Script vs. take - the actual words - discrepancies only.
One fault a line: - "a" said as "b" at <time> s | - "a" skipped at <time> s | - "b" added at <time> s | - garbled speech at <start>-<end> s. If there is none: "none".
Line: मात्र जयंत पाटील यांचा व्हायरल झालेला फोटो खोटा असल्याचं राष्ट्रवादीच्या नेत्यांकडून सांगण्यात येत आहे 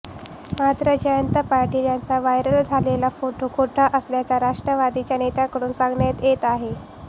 none